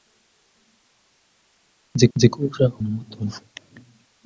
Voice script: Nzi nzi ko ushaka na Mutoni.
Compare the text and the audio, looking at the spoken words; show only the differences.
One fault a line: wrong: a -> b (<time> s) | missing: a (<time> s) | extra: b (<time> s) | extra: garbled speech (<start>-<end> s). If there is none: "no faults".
no faults